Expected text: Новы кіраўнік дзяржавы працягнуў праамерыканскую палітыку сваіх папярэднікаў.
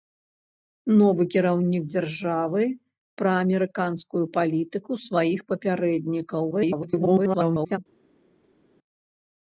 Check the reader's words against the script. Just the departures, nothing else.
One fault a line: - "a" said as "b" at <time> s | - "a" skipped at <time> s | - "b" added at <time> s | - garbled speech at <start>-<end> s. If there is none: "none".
- "працягнуў" skipped at 2.6 s
- garbled speech at 6.5-7.8 s